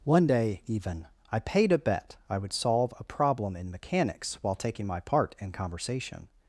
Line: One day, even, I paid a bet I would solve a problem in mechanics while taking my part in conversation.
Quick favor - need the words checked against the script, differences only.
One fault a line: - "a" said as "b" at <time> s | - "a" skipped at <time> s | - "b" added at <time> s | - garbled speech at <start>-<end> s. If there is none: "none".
none